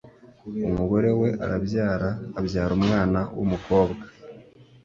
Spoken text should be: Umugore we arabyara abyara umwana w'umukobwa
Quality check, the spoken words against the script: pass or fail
pass